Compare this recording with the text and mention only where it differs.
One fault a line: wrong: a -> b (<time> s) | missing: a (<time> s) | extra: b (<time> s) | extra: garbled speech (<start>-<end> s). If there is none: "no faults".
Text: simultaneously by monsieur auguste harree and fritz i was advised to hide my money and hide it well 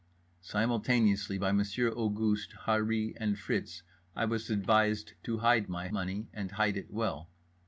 no faults